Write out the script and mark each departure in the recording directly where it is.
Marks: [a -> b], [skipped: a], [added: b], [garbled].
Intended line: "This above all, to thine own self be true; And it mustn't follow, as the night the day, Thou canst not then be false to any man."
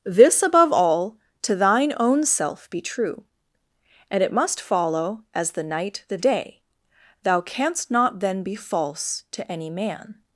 "This above all, to thine own self be true; And it [mustn't -> must] follow, as the night the day, Thou canst not then be false to any man."